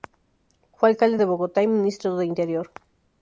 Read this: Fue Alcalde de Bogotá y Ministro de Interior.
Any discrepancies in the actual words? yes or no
no